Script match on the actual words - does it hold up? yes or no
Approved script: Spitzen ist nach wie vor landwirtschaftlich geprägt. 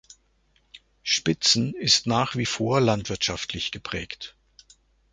yes